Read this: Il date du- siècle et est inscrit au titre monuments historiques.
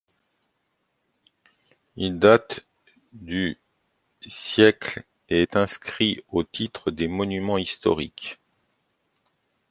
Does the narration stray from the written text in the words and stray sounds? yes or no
yes